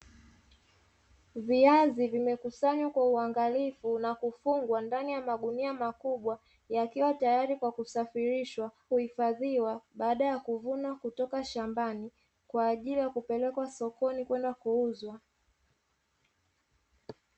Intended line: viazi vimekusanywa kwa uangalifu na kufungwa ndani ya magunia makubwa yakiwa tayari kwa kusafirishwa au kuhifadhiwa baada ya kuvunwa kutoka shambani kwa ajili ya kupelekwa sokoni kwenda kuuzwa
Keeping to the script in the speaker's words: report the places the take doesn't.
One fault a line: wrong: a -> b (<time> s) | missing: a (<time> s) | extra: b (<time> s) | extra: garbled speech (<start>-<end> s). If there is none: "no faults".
missing: au (8.7 s)